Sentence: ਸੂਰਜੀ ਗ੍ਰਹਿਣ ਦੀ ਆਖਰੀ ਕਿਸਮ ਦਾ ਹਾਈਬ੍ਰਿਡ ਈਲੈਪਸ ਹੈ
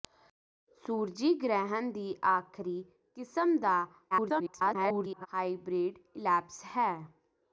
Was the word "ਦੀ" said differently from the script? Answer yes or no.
no